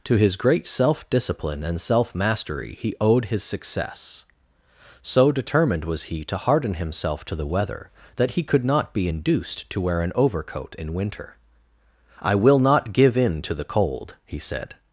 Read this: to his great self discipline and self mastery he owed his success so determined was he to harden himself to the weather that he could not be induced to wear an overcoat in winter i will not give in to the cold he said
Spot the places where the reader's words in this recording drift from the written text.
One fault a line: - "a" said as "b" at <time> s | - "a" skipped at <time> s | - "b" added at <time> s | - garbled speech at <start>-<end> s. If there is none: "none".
none